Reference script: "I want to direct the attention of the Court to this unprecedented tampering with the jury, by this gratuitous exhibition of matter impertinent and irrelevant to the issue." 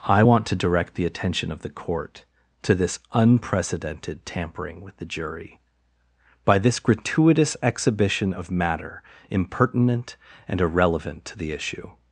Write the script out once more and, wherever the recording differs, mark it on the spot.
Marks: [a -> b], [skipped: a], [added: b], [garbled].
"I want to direct the attention of the Court to this unprecedented tampering with the jury, by this gratuitous exhibition of matter impertinent and irrelevant to the issue."